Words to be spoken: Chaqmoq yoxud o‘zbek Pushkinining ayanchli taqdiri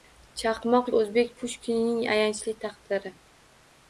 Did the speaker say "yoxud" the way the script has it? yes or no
no